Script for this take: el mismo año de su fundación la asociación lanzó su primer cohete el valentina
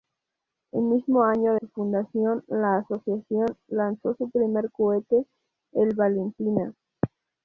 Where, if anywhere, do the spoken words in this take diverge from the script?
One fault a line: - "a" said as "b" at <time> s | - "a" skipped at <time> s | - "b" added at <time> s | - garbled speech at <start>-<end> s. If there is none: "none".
- "de" skipped at 1.6 s